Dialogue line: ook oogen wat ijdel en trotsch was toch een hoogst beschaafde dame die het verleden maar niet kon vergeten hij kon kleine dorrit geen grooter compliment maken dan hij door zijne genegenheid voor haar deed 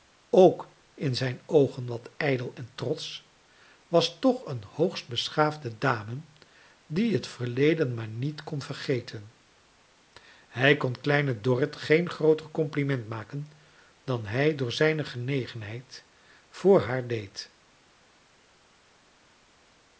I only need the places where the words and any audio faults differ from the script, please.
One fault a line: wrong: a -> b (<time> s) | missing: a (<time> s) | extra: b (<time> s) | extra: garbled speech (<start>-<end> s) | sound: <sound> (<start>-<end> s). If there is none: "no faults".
extra: in zijn (0.9 s)